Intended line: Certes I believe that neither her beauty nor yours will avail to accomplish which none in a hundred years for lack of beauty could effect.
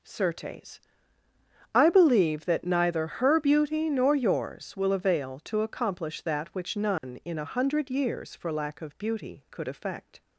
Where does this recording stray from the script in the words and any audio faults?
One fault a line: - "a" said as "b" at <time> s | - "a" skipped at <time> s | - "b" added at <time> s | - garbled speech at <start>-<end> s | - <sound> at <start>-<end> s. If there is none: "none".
- "that" added at 6.2 s
- dropout at 7.0-7.0 s